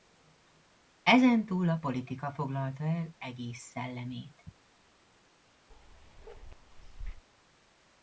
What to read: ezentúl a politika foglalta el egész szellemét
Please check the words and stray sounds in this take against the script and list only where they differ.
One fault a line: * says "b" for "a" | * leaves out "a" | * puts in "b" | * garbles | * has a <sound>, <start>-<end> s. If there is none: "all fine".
* has a bark, 5.7-7.2 s